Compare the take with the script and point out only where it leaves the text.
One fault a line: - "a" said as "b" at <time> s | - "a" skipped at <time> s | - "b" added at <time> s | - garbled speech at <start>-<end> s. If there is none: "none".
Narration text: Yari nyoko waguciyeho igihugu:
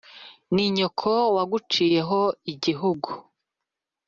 - "Yari" said as "Ni" at 0.5 s